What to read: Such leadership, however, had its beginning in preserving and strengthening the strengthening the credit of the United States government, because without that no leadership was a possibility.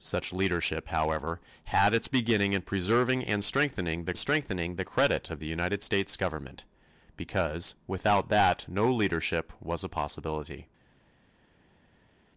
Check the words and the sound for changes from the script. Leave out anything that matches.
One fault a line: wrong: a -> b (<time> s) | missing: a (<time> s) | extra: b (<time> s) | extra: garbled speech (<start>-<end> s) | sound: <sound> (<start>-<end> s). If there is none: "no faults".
no faults